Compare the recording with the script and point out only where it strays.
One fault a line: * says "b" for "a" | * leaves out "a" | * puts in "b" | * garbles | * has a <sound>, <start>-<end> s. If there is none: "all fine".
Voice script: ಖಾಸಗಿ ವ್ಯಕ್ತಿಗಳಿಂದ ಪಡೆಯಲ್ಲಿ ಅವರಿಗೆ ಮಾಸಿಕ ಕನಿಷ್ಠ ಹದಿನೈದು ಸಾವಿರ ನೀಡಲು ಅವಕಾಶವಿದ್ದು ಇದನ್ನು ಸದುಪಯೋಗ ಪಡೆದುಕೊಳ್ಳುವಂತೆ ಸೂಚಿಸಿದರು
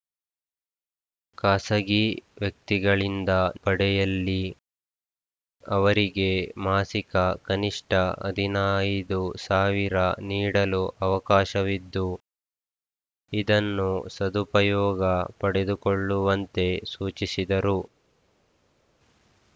all fine